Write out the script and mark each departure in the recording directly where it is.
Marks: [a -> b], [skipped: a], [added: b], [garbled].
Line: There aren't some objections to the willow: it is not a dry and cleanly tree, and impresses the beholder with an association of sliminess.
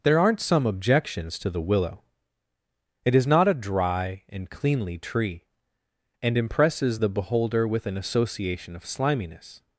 There aren't some objections to the willow: it is not a dry and cleanly tree, and impresses the beholder with an association of sliminess.